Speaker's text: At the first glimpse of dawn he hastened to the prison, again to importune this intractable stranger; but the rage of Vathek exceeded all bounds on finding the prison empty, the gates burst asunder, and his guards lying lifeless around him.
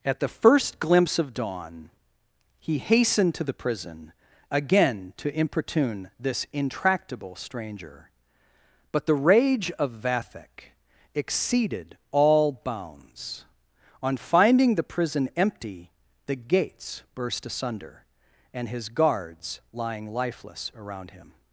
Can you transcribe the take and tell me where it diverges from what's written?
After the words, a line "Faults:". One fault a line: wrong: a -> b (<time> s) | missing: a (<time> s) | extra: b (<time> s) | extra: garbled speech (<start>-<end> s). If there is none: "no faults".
At the first glimpse of dawn he hastened to the prison, again to importune this intractable stranger; but the rage of Vathek exceeded all bounds on finding the prison empty, the gates burst asunder, and his guards lying lifeless around him.
Faults:
no faults